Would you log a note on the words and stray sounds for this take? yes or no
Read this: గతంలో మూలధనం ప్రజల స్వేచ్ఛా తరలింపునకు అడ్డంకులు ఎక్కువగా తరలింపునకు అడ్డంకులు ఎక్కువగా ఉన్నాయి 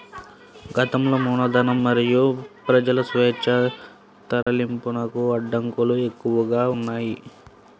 yes